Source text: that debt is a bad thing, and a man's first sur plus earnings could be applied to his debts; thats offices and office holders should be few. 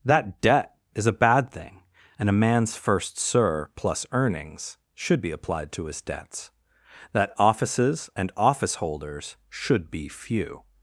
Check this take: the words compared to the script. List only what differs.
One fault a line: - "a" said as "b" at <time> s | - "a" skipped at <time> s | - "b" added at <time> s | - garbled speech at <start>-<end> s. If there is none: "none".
- "could" said as "should" at 4.9 s
- "thats" said as "that" at 7.1 s